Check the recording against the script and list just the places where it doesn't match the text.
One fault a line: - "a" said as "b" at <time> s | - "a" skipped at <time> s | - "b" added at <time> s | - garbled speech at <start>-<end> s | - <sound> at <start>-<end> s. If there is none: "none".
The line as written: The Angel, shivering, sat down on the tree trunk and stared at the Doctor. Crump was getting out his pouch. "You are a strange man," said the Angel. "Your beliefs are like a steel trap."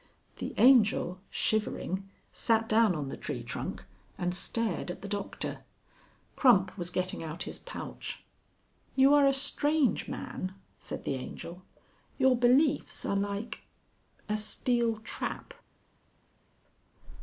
none